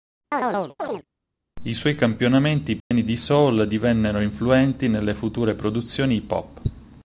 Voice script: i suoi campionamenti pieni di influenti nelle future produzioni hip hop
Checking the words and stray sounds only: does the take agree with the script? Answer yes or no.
no